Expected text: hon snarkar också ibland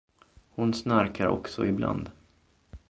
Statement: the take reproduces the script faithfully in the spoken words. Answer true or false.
true